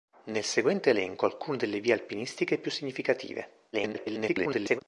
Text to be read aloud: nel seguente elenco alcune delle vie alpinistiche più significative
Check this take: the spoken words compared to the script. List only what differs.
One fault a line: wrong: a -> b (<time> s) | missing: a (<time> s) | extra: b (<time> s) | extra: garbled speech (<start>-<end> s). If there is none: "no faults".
extra: garbled speech (3.7-4.8 s)